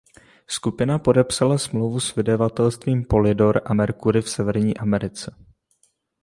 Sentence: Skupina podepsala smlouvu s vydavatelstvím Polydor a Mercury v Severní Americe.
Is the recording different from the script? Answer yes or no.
no